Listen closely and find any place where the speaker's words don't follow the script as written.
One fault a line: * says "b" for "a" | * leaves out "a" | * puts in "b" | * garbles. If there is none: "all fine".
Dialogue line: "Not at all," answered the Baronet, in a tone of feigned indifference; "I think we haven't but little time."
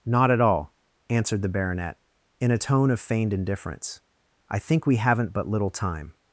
all fine